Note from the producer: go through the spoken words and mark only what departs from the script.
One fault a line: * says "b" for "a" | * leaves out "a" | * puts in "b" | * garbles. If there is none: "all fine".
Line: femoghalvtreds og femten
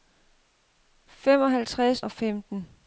all fine